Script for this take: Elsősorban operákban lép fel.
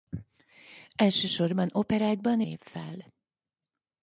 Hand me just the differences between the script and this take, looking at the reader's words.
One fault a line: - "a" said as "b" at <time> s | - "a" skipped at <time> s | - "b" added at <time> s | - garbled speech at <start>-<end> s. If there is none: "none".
none